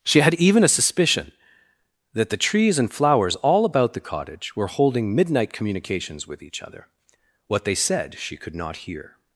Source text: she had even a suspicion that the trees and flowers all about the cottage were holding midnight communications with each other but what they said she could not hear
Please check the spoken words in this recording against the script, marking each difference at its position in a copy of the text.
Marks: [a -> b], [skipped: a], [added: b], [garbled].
she had even a suspicion that the trees and flowers all about the cottage were holding midnight communications with each other [skipped: but] what they said she could not hear